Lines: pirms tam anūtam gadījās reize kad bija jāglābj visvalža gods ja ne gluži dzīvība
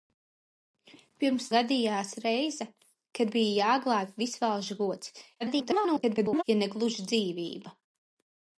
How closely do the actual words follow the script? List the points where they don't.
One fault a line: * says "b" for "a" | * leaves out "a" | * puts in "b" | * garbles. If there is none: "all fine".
* leaves out "tam anūtam"
* garbles